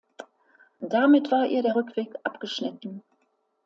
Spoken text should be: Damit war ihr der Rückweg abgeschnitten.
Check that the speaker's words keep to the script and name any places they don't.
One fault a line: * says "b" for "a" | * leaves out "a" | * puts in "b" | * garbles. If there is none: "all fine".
all fine